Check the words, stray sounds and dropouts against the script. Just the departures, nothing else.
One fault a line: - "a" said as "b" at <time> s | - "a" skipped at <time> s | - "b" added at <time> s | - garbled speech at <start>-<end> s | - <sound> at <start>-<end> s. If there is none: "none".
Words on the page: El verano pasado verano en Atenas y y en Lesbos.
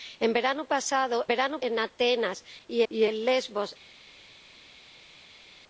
none